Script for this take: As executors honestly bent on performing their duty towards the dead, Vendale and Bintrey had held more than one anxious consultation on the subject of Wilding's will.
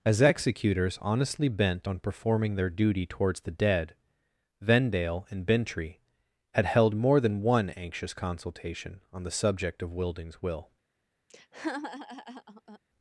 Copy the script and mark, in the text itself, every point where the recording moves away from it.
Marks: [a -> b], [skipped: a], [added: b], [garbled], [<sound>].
As executors honestly bent on performing their duty towards the dead, Vendale and Bintrey had held more than one anxious consultation on the subject of Wilding's will. [laugh]